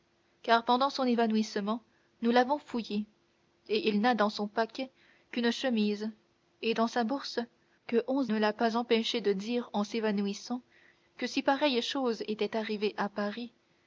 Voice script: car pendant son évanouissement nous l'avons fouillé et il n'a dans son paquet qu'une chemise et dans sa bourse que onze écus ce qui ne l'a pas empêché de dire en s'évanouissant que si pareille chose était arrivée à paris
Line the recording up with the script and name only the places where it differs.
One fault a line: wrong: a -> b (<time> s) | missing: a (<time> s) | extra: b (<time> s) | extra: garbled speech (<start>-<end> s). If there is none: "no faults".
missing: écus ce qui (8.3 s)